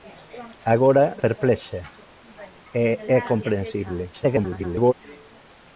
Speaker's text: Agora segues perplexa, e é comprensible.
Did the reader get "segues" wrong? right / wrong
wrong